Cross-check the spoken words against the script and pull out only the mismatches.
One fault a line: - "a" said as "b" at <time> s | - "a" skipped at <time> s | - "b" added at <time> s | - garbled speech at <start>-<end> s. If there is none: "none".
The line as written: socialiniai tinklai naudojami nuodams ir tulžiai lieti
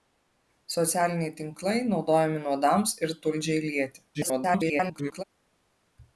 - garbled speech at 4.1-5.2 s